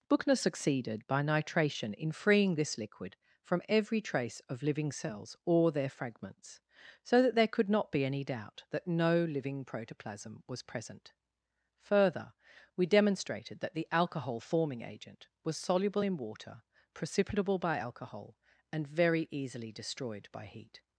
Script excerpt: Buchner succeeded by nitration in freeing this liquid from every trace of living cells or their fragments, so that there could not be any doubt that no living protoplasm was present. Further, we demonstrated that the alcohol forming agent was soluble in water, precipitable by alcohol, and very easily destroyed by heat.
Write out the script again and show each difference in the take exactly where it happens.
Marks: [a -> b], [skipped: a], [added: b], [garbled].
Buchner succeeded by nitration in freeing this liquid from every trace of living cells or their fragments, so that there could not be any doubt that no living protoplasm was present. Further, we demonstrated that the alcohol forming agent was soluble in water, precipitable by alcohol, and very easily destroyed by heat.